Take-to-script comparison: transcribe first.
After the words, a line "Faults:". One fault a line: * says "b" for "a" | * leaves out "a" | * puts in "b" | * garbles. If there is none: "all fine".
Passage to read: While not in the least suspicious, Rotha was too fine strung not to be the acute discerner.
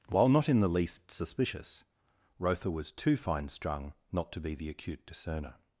While not in the least suspicious, Rotha was too fine strung not to be the acute discerner.
Faults:
all fine